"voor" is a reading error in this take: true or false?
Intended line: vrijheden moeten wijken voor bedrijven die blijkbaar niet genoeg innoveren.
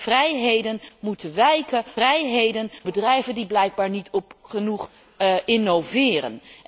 true